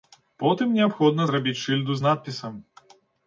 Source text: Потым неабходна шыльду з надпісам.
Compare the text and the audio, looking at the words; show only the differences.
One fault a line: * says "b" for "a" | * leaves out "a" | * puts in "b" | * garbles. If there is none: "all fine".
* puts in "зрабіць"